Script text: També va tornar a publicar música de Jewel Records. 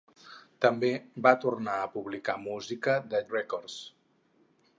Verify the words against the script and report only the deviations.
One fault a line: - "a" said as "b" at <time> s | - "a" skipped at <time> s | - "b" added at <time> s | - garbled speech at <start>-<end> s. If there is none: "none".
- "Jewel" skipped at 3.2 s